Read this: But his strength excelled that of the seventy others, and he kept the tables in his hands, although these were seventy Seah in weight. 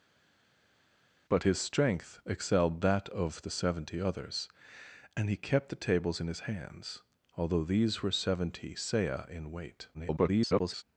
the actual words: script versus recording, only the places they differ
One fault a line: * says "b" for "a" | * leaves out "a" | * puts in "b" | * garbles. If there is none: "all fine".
* garbles